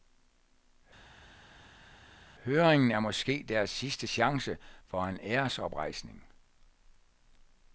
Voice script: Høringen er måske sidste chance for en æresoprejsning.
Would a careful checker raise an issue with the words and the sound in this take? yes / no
yes